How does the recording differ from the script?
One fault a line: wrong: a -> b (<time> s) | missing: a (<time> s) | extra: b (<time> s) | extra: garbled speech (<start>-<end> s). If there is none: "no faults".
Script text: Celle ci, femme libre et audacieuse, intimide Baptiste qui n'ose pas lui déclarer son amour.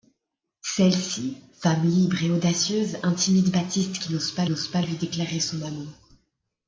extra: n'ose pas (4.5 s)